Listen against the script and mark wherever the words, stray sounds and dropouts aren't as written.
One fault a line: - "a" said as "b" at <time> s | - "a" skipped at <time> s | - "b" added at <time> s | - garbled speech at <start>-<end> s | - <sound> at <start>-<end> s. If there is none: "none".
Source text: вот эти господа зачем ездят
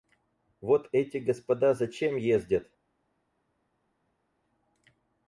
none